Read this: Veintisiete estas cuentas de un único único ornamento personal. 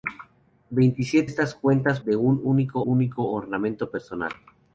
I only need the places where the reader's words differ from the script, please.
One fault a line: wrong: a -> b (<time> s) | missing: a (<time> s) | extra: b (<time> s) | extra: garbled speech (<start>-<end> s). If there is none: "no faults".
no faults